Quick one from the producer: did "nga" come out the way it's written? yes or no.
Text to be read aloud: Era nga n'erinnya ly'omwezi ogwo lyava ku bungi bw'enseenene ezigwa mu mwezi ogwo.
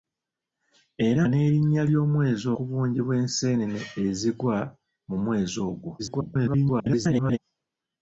no